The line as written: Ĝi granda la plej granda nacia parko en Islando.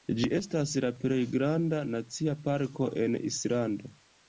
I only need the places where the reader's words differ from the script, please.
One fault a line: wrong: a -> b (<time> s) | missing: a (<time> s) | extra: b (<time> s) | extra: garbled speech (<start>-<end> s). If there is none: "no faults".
wrong: granda -> estas (0.3 s)